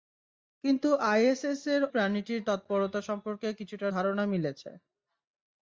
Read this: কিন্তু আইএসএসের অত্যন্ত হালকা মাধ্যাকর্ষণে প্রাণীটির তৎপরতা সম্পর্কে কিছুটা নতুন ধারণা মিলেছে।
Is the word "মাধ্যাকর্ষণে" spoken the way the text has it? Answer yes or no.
no